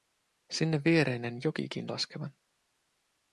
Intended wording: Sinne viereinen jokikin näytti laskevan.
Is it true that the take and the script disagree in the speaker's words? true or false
true